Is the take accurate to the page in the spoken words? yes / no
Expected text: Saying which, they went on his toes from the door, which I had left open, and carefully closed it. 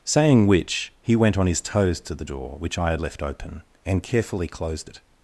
no